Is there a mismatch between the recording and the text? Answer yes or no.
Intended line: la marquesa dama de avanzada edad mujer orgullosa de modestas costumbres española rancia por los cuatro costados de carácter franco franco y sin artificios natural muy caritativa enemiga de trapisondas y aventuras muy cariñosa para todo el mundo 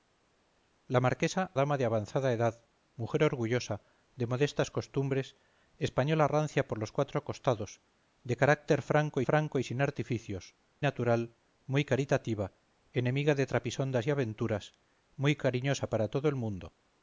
no